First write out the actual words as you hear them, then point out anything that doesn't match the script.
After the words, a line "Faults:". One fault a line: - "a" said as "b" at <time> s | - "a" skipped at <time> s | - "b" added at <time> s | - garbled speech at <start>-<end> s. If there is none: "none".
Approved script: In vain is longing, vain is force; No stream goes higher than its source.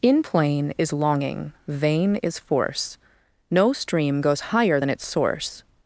In plain is longing, vain is force; No stream goes higher than its source.
Faults:
- "vain" said as "plain" at 0.2 s